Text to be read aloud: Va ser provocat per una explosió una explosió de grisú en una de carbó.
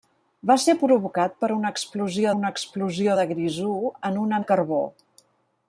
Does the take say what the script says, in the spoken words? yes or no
yes